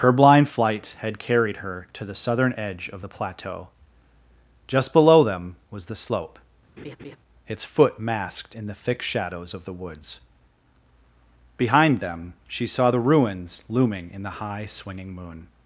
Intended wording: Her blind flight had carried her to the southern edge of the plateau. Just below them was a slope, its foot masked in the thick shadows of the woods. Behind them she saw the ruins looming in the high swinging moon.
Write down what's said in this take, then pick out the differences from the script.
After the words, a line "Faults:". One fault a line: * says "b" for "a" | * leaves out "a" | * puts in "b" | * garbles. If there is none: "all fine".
Her blind flight had carried her to the southern edge of the plateau. Just below them was the slope, its foot masked in the thick shadows of the woods. Behind them she saw the ruins looming in the high swinging moon.
Faults:
* says "the" for "a"